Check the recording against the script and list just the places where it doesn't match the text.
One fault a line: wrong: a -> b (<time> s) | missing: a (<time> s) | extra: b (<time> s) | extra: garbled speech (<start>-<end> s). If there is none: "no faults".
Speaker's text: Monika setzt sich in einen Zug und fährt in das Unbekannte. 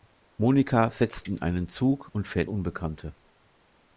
missing: sich (1.3 s)
missing: in das (2.5 s)